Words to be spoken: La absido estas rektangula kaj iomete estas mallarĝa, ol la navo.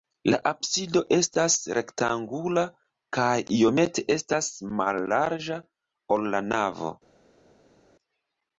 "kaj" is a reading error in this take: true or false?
false